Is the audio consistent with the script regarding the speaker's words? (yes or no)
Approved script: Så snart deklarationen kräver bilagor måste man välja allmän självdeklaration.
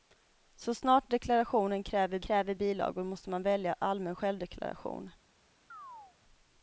no